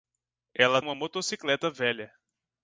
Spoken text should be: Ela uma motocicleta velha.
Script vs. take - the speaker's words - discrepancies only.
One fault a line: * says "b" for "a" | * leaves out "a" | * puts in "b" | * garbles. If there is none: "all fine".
all fine